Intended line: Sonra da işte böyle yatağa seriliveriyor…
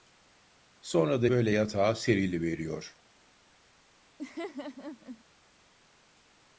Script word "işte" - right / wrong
wrong